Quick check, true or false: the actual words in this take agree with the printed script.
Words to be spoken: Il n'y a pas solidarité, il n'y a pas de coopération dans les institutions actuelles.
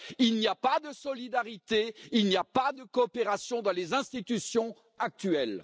false